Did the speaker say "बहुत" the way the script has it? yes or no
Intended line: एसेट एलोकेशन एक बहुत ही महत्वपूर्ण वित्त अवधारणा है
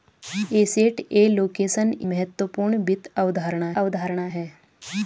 no